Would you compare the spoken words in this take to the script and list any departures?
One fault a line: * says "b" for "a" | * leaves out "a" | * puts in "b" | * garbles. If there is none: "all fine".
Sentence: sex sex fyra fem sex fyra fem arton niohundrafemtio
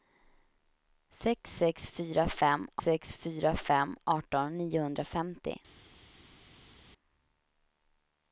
all fine